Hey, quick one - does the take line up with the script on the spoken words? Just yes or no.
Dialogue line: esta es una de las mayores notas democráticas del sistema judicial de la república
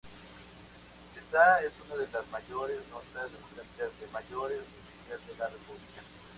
no